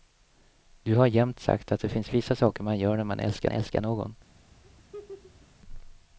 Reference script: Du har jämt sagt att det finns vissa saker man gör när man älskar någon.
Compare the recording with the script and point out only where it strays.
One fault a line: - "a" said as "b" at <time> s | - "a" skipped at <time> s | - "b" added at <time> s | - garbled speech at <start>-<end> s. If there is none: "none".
- "älskar" added at 3.5 s